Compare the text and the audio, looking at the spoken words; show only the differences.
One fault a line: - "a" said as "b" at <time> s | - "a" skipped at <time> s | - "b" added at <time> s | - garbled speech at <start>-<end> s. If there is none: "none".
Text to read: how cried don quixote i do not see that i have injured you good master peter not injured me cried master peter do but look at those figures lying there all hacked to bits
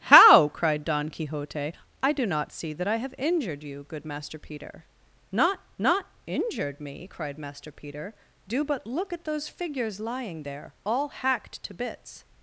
- "not" added at 5.8 s